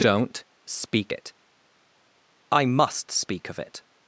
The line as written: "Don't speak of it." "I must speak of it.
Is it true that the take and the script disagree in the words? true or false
true